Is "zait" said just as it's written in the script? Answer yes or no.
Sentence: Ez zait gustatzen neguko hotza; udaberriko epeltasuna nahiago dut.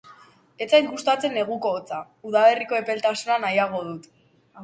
yes